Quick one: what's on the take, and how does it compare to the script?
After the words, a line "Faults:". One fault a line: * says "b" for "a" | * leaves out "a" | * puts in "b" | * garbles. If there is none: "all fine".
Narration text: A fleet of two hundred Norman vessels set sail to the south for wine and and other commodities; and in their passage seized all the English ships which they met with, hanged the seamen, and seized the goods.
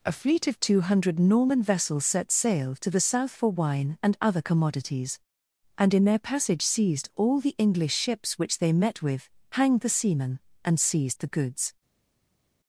A fleet of two hundred Norman vessels set sail to the south for wine and other commodities; and in their passage seized all the English ships which they met with, hanged the seamen, and seized the goods.
Faults:
* leaves out "and"